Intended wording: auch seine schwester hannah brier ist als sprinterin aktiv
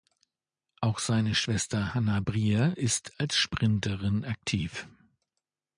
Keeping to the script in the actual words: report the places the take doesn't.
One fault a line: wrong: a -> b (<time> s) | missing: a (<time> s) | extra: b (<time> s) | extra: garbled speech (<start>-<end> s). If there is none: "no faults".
no faults